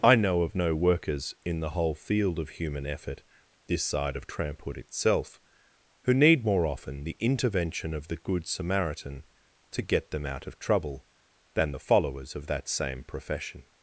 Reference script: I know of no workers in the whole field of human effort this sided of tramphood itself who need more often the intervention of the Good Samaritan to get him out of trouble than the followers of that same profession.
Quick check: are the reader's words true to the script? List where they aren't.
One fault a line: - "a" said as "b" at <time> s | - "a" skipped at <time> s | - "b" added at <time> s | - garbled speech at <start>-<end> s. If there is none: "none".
- "sided" said as "side" at 3.8 s
- "him" said as "them" at 10.1 s